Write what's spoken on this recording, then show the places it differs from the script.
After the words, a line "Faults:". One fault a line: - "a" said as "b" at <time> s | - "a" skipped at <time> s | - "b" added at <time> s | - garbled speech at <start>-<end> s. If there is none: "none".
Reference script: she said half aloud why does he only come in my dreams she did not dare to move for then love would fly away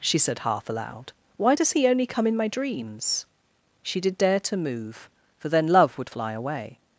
she said half aloud why does he only come in my dreams she did dare to move for then love would fly away
Faults:
- "not" skipped at 4.2 s